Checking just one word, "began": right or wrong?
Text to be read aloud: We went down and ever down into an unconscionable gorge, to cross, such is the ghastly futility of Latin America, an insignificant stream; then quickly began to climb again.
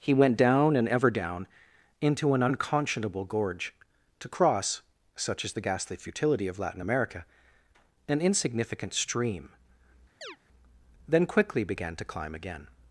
right